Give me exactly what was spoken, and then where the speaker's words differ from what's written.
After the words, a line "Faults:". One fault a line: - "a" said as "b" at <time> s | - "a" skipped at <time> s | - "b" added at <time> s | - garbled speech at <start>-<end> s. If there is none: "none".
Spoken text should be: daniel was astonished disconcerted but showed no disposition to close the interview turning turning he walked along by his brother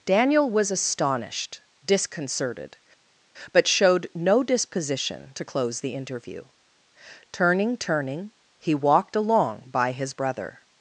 daniel was astonished disconcerted but showed no disposition to close the interview turning turning he walked along by his brother
Faults:
none